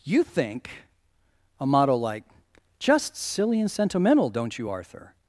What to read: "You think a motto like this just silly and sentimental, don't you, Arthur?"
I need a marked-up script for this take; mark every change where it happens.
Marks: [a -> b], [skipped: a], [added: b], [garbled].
"You think a motto like [skipped: this] just silly and sentimental, don't you, Arthur?"